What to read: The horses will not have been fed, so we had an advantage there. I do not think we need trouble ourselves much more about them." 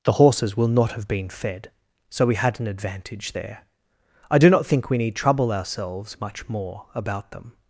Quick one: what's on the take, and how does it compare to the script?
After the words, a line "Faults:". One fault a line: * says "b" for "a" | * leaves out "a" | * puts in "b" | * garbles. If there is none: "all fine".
The horses will not have been fed, so we had an advantage there. I do not think we need trouble ourselves much more about them."
Faults:
all fine